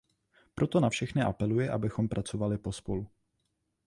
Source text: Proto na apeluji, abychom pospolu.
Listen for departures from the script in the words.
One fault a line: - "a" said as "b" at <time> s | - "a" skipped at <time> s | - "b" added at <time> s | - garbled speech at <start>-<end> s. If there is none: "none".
- "všechny" added at 0.9 s
- "pracovali" added at 2.1 s